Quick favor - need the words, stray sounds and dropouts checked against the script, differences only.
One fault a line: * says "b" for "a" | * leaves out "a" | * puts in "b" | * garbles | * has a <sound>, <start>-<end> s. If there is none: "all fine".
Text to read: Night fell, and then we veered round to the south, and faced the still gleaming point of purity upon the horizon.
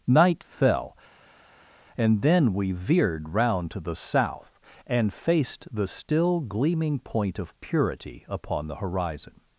all fine